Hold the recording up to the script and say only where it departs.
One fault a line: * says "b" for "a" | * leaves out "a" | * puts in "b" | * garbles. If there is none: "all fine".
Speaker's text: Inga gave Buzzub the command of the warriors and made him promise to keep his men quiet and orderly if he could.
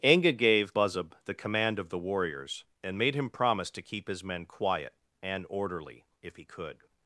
all fine